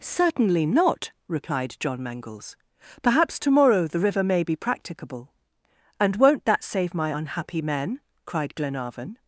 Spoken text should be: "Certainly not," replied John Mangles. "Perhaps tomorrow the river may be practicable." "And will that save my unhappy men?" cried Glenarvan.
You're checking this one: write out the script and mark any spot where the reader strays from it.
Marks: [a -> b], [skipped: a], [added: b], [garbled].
"Certainly not," replied John Mangles. "Perhaps tomorrow the river may be practicable." "And [will -> won't] that save my unhappy men?" cried Glenarvan.